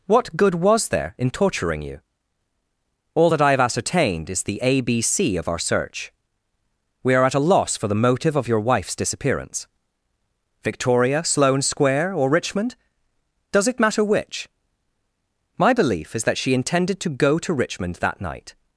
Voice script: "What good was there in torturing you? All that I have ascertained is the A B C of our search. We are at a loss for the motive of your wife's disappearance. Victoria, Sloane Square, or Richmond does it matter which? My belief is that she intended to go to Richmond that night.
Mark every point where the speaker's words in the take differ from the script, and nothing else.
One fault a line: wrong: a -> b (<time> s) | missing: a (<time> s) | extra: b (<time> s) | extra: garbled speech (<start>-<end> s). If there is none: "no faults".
no faults